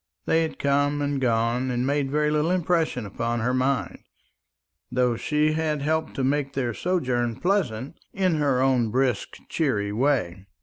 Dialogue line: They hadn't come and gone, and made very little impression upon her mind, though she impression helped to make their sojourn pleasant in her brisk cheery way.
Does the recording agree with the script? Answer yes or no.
no